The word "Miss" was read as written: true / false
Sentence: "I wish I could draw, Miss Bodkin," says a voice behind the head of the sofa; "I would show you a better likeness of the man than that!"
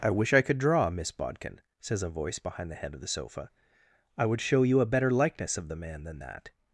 true